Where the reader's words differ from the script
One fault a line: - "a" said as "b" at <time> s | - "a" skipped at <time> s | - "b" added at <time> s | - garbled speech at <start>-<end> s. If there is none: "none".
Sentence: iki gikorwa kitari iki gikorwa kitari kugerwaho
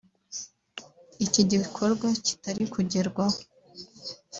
- "iki gikorwa kitari" skipped at 2.6 s